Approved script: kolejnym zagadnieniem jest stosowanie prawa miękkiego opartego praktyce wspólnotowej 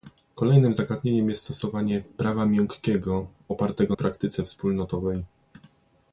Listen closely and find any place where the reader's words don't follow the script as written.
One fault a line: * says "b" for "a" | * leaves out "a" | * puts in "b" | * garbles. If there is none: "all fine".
all fine